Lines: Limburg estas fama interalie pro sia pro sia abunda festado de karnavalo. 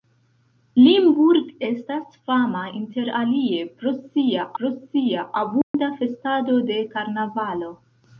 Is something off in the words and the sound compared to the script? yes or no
yes